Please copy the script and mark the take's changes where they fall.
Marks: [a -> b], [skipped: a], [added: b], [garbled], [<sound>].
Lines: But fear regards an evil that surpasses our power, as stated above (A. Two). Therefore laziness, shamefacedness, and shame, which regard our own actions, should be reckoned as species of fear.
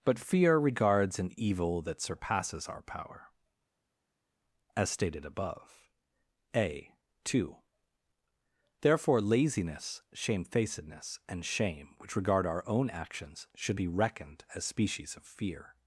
But fear regards an evil that surpasses our power, as stated above (A. Two). Therefore laziness, shamefacedness, and shame, which regard our own actions, should be reckoned as species of fear.